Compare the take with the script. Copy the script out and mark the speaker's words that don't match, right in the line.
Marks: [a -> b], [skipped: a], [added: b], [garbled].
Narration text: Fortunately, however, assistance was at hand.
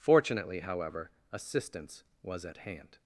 Fortunately, however, assistance was at hand.